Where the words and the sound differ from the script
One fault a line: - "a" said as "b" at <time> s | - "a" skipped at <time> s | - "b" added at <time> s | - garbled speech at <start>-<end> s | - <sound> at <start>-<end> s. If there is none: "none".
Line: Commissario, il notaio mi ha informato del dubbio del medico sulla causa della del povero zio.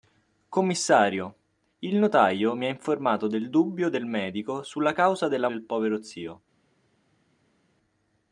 none